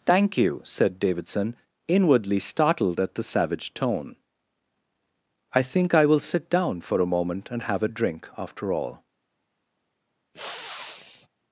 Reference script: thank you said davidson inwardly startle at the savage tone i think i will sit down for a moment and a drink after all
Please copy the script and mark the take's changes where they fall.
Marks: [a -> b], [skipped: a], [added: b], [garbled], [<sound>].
thank you said davidson inwardly [startle -> startled] at the savage tone i think i will sit down for a moment and [added: have] a drink after all [sniff]